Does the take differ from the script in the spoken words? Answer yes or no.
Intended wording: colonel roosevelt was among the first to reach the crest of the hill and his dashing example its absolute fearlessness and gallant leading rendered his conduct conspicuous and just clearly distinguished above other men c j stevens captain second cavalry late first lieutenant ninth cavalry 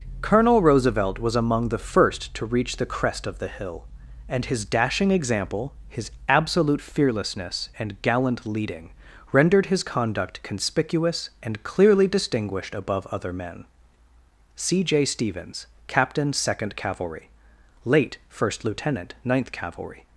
yes